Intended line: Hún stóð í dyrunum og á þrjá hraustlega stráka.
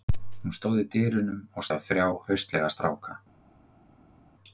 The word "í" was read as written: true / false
true